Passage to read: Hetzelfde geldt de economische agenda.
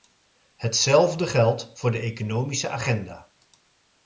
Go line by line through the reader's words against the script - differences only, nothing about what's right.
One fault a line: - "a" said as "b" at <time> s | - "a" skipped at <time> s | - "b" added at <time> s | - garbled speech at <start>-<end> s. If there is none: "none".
- "voor" added at 1.7 s